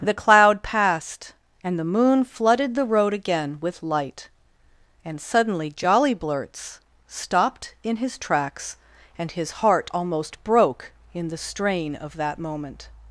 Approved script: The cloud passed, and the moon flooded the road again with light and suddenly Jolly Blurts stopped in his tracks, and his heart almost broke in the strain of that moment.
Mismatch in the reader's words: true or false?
false